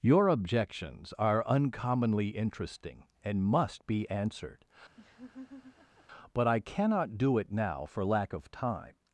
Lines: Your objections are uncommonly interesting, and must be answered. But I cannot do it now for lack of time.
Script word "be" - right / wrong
right